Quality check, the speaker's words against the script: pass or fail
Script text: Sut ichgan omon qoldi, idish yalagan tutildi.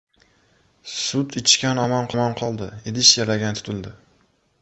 fail